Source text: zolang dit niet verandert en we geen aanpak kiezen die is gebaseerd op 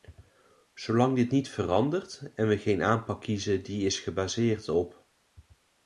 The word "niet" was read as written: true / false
true